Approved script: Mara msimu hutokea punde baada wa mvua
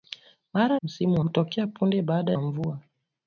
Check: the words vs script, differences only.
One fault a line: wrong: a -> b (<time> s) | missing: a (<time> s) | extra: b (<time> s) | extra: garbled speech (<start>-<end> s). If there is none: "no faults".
no faults